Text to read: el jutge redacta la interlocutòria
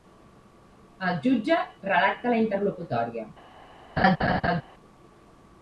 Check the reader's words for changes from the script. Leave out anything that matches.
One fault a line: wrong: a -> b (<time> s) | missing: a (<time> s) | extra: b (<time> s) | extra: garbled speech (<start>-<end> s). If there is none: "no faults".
no faults